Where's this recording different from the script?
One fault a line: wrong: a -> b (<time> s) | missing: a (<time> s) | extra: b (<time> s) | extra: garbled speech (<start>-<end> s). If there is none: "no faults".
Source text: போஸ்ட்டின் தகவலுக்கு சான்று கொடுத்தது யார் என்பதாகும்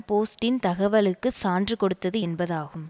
missing: யார் (2.2 s)